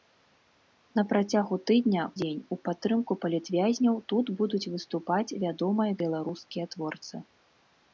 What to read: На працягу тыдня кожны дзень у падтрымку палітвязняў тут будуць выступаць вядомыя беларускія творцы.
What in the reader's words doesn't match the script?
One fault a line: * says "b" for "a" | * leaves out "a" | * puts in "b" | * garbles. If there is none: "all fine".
* leaves out "кожны"